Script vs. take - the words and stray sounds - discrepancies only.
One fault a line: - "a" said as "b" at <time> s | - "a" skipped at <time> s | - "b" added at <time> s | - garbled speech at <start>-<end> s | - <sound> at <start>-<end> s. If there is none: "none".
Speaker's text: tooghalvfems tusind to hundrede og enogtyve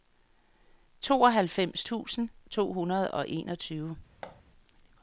- thud at 4.2-4.4 s